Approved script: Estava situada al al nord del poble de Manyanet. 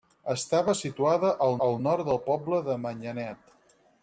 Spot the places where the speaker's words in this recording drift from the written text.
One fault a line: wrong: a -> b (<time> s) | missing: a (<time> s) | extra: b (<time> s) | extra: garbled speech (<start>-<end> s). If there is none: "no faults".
no faults